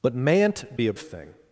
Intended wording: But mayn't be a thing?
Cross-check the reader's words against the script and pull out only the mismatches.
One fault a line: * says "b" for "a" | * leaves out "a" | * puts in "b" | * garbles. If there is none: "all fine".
all fine